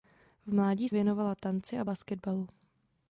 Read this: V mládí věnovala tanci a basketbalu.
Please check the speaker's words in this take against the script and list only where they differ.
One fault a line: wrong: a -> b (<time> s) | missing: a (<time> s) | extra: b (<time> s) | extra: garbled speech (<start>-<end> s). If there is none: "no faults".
no faults